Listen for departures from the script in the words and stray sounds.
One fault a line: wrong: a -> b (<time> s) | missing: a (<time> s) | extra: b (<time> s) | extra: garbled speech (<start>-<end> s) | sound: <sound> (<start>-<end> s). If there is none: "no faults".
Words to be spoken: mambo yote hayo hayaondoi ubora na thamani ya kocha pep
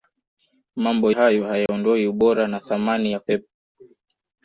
missing: yote (1.1 s)
sound: dropout (1.7-1.7 s)
missing: kocha (3.2 s)